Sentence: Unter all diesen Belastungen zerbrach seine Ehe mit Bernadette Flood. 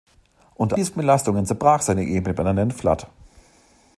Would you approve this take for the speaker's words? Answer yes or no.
no